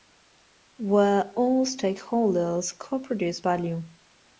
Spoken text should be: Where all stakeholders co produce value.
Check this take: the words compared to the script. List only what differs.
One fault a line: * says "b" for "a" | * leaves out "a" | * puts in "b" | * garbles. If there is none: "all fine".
all fine